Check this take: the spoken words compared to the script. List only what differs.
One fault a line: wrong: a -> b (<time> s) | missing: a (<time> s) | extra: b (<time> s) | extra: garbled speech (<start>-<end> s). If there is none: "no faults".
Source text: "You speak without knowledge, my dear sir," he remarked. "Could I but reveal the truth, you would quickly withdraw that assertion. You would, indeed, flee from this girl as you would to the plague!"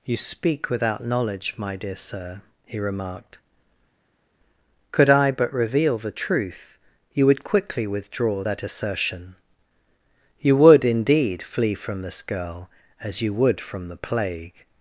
wrong: to -> from (13.6 s)